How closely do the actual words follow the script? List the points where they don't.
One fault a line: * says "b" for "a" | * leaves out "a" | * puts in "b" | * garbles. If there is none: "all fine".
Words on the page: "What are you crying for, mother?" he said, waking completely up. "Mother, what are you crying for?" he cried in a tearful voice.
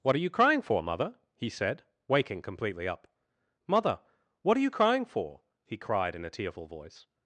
all fine